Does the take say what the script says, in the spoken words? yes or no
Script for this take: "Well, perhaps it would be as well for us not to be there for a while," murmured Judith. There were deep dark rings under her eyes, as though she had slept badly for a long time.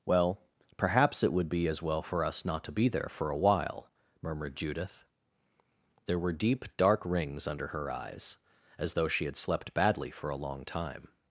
yes